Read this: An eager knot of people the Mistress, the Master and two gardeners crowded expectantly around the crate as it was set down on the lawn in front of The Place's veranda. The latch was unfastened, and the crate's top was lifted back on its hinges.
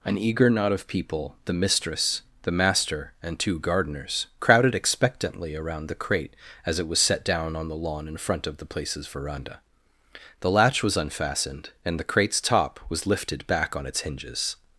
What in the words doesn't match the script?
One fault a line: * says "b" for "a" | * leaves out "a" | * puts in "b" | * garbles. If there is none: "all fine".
all fine